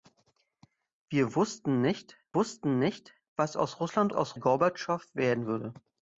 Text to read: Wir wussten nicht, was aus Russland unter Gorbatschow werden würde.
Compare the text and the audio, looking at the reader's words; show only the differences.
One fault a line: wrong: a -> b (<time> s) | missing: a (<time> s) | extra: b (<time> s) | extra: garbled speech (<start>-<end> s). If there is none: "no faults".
extra: wussten nicht (2.3 s)
wrong: unter -> aus (4.1 s)